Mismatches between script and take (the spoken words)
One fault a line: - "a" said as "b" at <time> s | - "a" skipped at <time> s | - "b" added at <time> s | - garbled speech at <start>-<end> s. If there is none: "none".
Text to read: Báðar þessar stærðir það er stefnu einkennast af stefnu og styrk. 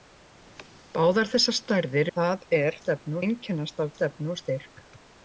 none